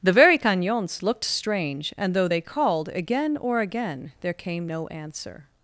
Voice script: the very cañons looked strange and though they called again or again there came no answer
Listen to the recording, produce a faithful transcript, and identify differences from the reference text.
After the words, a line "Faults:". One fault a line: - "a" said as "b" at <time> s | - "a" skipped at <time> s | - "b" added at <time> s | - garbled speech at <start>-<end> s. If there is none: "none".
the very cañons looked strange and though they called again or again there came no answer
Faults:
none